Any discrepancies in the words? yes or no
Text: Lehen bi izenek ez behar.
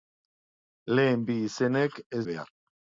no